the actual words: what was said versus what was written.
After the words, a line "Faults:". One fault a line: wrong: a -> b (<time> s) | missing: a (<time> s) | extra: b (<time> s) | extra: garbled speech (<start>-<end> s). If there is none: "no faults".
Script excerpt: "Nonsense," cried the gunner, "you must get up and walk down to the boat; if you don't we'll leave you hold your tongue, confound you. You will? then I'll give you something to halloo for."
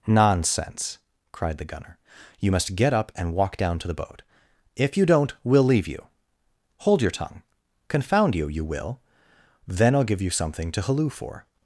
"Nonsense," cried the gunner, "you must get up and walk down to the boat; if you don't we'll leave you hold your tongue, confound you. You will? then I'll give you something to halloo for."
Faults:
no faults